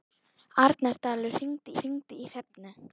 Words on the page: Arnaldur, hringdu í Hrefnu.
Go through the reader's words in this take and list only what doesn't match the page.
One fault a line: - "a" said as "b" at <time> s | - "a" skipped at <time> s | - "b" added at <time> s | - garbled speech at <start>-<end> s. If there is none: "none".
- "hringdu" added at 1.8 s